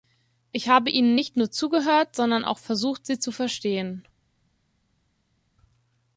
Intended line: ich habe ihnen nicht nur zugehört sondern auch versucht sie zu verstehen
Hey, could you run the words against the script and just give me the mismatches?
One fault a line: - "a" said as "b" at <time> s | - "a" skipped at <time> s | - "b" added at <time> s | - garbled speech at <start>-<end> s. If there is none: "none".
none